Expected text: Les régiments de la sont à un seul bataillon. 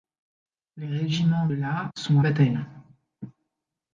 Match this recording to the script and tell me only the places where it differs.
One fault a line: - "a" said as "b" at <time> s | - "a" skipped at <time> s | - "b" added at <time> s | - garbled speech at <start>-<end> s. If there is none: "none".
- "de" skipped at 1.5 s
- "à un seul" skipped at 2.2 s